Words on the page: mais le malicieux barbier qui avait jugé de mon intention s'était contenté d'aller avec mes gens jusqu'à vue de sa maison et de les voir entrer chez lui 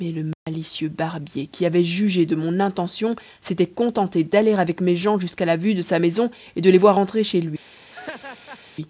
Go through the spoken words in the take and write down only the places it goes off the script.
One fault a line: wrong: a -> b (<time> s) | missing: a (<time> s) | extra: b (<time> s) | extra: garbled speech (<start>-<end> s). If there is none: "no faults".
extra: la (5.5 s)